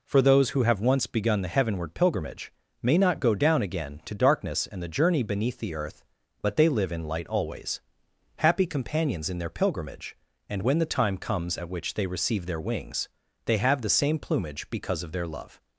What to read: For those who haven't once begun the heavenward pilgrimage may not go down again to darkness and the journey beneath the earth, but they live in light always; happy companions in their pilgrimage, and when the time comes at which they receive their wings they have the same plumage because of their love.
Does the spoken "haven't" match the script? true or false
false